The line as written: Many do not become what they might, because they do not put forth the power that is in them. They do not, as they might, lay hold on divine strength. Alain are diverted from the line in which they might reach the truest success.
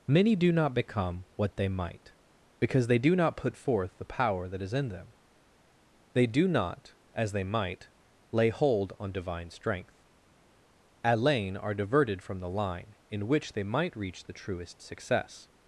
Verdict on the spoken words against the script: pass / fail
pass